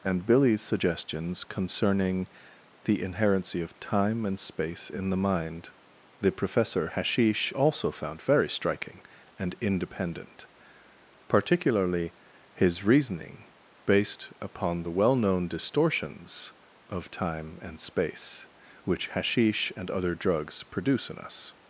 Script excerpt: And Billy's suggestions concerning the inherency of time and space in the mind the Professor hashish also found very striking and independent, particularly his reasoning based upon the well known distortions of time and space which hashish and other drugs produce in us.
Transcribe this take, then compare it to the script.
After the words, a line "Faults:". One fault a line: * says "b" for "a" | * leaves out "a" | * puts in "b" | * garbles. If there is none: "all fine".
And Billy's suggestions concerning the inherency of time and space in the mind the Professor hashish also found very striking and independent, particularly his reasoning based upon the well known distortions of time and space which hashish and other drugs produce in us.
Faults:
all fine